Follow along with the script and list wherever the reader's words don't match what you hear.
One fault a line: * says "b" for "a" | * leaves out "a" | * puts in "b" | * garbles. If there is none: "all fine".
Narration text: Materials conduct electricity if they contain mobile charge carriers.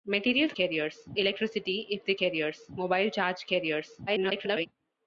* says "carriers" for "conduct"
* says "carriers" for "contain"
* garbles